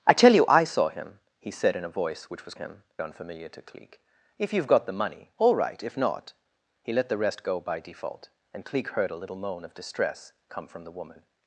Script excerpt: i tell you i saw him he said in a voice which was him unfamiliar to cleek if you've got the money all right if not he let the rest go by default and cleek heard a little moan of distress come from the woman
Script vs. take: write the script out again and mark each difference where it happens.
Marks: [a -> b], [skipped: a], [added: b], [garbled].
i tell you i saw him he said in a voice which was him unfamiliar to cleek if you've got the money all right if not he let the rest go by default and cleek heard a little moan of distress come from the woman